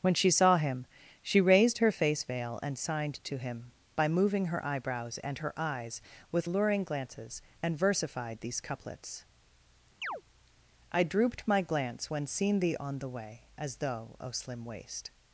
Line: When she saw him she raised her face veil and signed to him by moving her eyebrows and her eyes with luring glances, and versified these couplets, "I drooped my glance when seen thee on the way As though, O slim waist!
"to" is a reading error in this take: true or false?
false